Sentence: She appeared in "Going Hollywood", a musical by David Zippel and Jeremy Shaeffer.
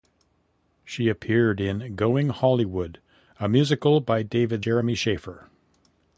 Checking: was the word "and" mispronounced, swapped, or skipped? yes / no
yes